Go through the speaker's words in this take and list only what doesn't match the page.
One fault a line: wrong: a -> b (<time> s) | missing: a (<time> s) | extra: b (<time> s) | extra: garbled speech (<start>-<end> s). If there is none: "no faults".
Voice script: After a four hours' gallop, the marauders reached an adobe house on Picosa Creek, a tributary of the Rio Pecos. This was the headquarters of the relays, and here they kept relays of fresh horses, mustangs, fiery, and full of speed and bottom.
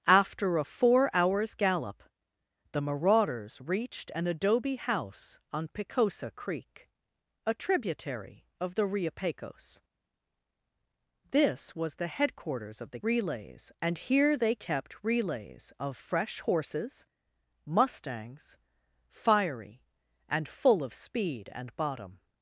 no faults